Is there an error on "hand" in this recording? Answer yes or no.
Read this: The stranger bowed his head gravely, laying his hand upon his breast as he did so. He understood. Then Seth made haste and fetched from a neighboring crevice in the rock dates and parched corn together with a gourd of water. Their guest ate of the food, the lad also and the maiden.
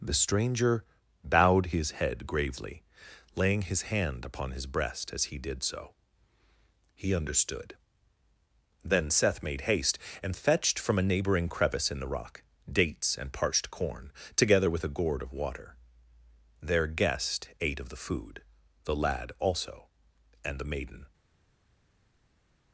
no